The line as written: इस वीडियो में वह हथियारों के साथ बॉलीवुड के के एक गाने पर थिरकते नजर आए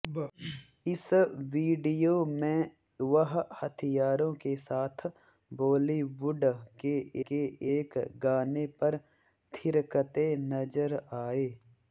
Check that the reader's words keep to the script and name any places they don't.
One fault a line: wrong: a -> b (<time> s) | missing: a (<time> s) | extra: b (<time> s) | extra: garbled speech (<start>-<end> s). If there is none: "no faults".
no faults